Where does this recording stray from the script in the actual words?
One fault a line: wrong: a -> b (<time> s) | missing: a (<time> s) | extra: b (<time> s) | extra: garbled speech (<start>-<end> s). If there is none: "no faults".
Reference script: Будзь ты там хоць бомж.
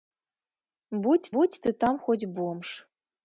extra: будзь (1.3 s)